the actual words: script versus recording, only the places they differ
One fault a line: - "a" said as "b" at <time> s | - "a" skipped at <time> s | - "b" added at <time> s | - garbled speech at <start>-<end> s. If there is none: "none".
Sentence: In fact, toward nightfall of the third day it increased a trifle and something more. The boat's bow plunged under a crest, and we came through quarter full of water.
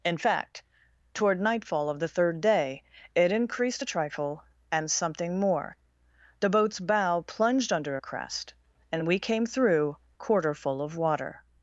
none